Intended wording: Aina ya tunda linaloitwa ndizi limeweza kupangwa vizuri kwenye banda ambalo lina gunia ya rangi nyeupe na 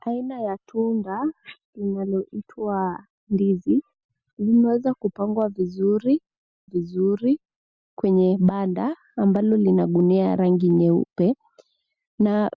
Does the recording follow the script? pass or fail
fail